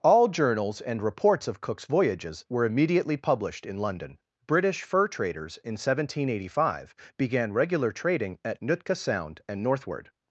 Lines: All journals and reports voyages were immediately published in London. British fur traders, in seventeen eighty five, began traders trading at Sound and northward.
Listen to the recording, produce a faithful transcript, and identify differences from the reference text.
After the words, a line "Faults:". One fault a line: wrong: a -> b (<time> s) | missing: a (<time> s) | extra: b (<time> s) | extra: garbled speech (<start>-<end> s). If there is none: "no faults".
All journals and reports of Cook's voyages were immediately published in London. British fur traders, in seventeen eighty five, began regular trading at Nootka Sound and northward.
Faults:
extra: of Cook's (1.5 s)
wrong: traders -> regular (7.5 s)
extra: Nootka (8.6 s)